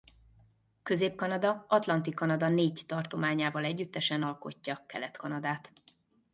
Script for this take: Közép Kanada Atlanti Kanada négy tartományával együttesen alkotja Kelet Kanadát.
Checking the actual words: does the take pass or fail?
pass